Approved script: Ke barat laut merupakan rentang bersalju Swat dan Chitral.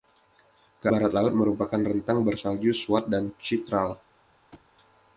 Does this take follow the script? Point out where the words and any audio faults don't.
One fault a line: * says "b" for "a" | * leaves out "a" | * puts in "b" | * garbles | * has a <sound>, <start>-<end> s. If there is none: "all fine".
* has a thud, 4.5-4.7 s